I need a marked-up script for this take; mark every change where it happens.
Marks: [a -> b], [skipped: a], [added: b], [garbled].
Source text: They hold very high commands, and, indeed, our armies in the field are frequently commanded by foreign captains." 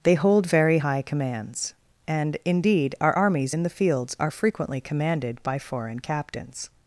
They hold very high commands, and, indeed, our armies in the [field -> fields] are frequently commanded by foreign captains."